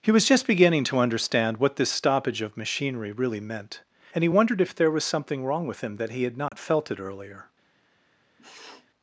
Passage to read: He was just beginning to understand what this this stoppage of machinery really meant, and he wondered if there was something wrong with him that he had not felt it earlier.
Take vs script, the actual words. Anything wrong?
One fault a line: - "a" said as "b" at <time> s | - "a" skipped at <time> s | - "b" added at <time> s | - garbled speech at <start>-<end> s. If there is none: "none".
- "this" skipped at 1.9 s